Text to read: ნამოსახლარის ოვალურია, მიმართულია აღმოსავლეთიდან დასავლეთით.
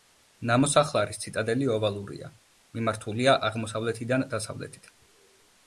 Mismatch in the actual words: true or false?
true